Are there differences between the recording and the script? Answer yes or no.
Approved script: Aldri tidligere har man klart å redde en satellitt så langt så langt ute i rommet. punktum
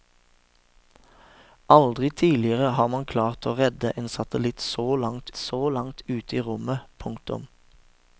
no